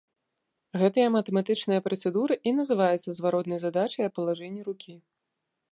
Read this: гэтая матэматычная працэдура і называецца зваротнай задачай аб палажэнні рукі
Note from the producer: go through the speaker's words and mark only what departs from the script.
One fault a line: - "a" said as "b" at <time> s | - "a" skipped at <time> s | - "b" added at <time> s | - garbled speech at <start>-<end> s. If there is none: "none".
none